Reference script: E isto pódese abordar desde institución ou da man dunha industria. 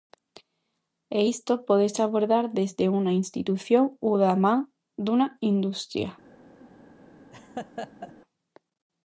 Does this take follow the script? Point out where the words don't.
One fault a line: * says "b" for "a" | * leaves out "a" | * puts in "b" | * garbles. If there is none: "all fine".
* puts in "unha"